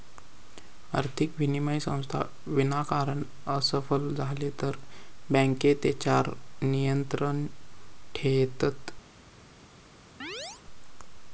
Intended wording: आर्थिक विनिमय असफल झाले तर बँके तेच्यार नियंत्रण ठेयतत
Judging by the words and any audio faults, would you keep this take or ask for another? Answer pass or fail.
fail